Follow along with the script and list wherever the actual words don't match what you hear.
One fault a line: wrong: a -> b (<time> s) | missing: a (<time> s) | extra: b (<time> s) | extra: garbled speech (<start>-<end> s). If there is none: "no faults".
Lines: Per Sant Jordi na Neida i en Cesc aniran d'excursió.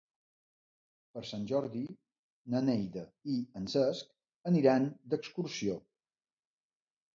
no faults